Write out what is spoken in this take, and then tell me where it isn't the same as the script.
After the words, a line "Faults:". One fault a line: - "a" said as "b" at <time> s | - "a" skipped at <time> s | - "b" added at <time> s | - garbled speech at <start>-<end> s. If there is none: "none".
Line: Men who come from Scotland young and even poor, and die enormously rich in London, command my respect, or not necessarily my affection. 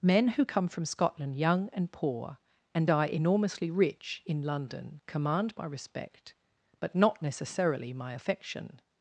Men who come from Scotland young and poor, and die enormously rich in London, command my respect, but not necessarily my affection.
Faults:
- "even" skipped at 1.9 s
- "or" said as "but" at 6.8 s